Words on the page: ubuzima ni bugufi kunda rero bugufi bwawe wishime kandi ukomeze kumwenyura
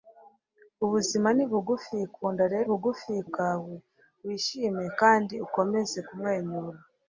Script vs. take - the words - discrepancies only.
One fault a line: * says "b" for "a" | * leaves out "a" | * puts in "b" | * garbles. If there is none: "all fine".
all fine